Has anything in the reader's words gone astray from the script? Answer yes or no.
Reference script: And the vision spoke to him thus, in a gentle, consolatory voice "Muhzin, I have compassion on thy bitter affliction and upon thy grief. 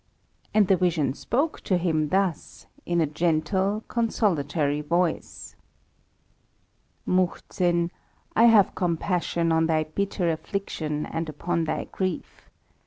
no